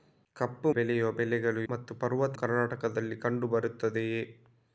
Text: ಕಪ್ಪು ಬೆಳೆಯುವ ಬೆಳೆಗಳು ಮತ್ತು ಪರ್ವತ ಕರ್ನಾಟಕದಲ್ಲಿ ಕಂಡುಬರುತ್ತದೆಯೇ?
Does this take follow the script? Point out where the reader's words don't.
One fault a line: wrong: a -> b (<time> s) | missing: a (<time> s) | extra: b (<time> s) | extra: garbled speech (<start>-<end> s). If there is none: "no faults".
no faults